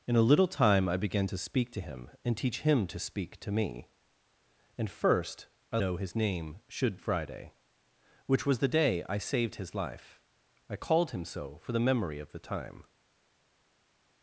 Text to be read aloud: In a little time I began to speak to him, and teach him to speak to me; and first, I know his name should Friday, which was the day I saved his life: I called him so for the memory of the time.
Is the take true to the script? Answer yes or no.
yes